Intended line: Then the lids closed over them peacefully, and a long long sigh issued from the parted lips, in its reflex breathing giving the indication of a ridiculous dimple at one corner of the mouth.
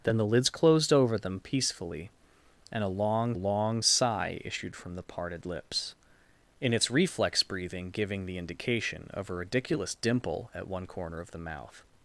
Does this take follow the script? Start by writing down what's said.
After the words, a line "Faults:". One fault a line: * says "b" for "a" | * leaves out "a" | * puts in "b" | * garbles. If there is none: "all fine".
Then the lids closed over them peacefully, and a long long sigh issued from the parted lips, in its reflex breathing giving the indication of a ridiculous dimple at one corner of the mouth.
Faults:
all fine